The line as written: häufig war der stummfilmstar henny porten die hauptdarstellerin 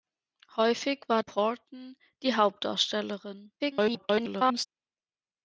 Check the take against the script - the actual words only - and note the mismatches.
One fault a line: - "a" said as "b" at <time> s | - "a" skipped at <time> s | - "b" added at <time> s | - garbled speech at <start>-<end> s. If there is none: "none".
- "der stummfilmstar henny" skipped at 1.2 s
- garbled speech at 3.6-4.7 s